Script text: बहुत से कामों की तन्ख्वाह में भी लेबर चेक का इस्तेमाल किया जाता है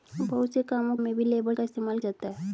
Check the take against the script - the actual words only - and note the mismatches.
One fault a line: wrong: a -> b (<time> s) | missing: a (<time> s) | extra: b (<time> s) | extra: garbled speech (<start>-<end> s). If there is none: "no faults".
missing: की तन्ख्वाह (0.9 s)
missing: चेक (1.5 s)
missing: किया (2.0 s)